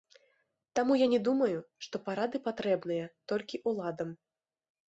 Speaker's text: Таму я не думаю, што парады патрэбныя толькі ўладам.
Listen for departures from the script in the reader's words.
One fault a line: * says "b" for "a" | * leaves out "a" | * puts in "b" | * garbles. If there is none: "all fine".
all fine